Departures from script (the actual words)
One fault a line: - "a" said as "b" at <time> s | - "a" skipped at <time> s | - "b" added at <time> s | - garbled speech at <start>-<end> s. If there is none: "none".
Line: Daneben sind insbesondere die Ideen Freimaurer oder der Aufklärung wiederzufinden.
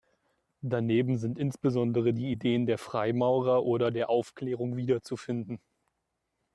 - "der" added at 2.7 s